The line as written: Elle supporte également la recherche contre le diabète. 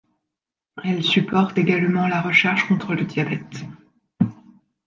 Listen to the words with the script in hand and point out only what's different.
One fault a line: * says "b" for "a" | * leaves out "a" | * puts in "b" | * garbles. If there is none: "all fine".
all fine